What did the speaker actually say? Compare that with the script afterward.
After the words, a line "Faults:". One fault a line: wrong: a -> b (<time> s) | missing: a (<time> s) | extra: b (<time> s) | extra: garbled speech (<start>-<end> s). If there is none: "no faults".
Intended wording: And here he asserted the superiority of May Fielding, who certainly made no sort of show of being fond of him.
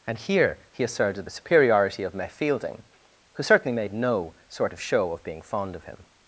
And here he asserted the superiority of May Fielding, who certainly made no sort of show of being fond of him.
Faults:
no faults